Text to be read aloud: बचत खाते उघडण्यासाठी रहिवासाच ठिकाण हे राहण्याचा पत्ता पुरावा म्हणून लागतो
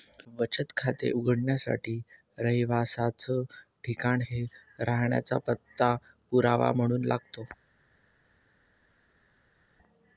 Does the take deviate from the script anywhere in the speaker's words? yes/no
no